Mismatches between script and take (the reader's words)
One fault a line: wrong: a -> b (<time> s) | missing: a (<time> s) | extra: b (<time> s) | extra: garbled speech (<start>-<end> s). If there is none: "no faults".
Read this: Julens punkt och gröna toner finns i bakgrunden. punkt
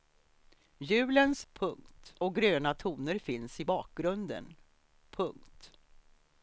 no faults